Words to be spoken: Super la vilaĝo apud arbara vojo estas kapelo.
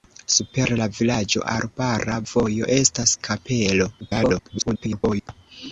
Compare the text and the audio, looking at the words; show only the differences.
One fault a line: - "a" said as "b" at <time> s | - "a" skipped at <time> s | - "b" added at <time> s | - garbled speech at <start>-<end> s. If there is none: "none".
- "apud" skipped at 1.4 s
- garbled speech at 4.0-5.3 s